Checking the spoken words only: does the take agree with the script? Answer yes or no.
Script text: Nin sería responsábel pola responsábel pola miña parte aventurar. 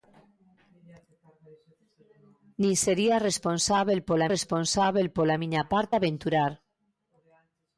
yes